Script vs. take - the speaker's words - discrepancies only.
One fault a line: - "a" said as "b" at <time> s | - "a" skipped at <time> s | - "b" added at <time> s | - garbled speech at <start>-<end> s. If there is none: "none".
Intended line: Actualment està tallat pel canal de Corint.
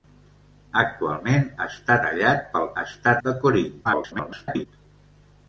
- "canal" said as "està" at 2.8 s
- garbled speech at 3.8-4.7 s